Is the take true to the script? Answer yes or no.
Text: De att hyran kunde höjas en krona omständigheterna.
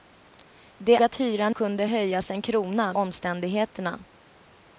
yes